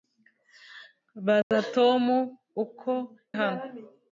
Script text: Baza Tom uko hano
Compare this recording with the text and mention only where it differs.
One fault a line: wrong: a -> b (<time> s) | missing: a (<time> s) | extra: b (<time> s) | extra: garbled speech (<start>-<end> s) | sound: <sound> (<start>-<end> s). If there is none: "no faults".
sound: dropout (1.4-1.5 s)